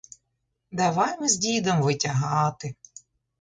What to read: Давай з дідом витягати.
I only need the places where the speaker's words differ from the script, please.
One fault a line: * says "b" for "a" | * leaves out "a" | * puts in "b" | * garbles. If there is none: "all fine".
* puts in "ми"